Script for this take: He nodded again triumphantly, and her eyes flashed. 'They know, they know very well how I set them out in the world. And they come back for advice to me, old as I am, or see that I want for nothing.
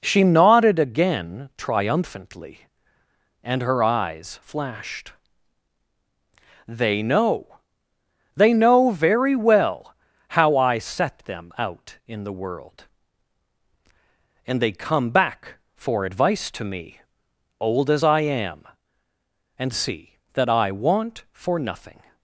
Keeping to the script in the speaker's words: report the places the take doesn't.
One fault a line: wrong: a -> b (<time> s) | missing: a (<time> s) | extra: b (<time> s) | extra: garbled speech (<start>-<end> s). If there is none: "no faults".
wrong: He -> She (0.0 s)
wrong: or -> and (19.6 s)